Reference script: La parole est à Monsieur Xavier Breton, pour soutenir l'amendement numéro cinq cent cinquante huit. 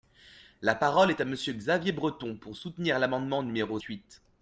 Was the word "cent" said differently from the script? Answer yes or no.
yes